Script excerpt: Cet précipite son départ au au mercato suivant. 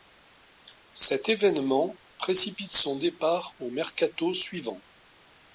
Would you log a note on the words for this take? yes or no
yes